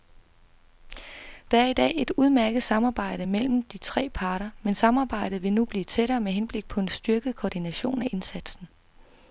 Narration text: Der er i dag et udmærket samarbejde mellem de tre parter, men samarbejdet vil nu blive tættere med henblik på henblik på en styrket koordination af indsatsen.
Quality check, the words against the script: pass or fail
fail